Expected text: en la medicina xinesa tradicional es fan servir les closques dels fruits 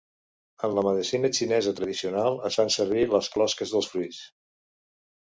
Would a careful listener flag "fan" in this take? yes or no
no